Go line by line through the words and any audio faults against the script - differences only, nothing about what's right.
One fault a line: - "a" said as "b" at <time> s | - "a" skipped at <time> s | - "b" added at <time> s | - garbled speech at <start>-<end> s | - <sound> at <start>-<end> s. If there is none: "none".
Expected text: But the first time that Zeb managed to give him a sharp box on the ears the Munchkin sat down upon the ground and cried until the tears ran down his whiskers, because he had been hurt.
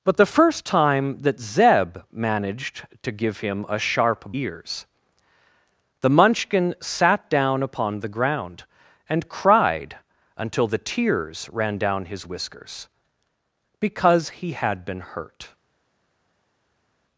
- "box on the" skipped at 4.3 s